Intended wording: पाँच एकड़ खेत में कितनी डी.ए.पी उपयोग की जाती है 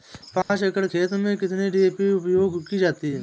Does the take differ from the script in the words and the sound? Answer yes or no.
yes